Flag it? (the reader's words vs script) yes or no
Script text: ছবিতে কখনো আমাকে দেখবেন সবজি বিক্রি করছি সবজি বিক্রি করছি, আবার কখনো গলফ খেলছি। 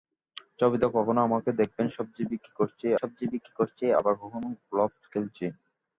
no